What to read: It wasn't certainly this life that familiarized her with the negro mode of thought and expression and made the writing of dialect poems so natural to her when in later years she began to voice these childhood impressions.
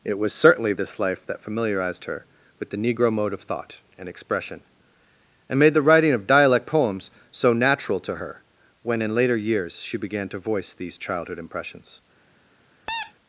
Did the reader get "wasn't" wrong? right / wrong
wrong